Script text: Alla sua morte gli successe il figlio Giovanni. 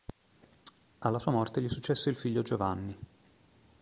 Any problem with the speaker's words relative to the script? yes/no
no